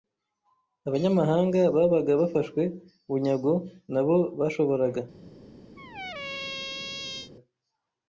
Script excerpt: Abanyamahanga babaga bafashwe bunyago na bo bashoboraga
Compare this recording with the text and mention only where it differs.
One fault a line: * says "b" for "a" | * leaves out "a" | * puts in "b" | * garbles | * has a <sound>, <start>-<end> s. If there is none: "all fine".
* has a squeak, 5.8-7.3 s